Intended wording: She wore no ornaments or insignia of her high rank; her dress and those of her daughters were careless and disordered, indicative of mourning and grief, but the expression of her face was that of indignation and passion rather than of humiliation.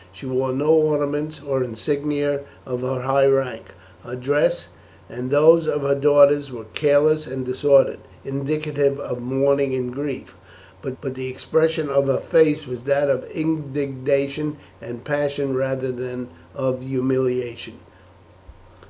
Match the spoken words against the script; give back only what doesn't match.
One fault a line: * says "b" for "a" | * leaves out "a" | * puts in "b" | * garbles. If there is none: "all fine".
* puts in "but"